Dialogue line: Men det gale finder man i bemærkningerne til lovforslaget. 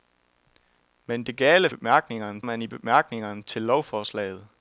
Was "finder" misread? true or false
true